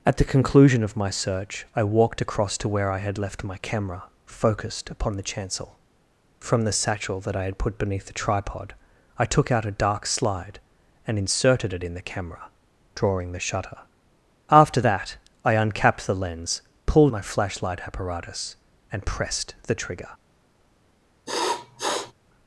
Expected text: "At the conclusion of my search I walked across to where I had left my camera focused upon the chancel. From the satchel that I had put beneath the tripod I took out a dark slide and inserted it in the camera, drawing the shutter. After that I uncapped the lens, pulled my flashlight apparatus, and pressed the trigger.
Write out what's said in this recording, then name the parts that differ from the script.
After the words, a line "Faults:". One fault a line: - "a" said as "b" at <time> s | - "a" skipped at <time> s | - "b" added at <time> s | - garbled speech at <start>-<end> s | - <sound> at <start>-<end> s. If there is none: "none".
"At the conclusion of my search I walked across to where I had left my camera focused upon the chancel. From the satchel that I had put beneath the tripod I took out a dark slide and inserted it in the camera, drawing the shutter. After that I uncapped the lens, pulled my flashlight apparatus, and pressed the trigger.
Faults:
- sniff at 21.3-22.1 s